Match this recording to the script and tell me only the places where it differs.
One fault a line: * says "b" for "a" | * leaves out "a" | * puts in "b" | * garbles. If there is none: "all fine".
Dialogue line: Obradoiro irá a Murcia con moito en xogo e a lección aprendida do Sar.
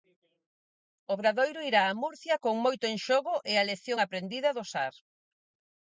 all fine